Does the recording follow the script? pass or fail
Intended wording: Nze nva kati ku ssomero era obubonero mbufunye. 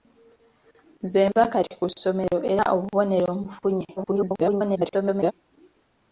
fail